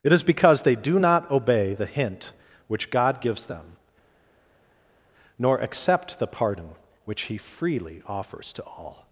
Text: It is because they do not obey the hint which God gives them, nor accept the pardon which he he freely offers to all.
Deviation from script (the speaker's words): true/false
true